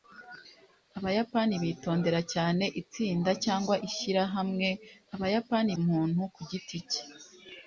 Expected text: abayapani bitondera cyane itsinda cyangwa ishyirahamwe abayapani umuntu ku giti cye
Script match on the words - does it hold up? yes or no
yes